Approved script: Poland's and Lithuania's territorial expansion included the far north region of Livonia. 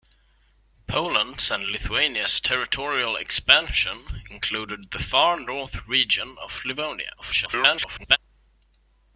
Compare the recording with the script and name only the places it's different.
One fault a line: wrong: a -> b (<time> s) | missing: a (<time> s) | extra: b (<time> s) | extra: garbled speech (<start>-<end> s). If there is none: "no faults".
extra: garbled speech (7.2-8.2 s)